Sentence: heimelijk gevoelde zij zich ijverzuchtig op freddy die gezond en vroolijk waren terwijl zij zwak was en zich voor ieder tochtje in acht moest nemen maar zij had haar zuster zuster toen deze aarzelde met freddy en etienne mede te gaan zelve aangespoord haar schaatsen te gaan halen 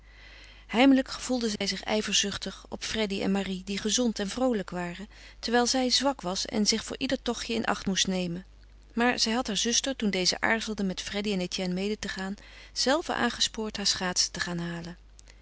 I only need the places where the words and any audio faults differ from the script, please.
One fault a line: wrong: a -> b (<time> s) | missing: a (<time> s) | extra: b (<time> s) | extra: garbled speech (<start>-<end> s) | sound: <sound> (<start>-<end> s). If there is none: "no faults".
sound: dropout (1.6-1.6 s)
extra: en marie (3.2 s)
missing: zuster (10.0 s)